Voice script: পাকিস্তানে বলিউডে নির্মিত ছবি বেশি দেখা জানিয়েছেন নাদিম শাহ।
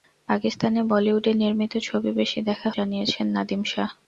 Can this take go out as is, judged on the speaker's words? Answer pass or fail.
pass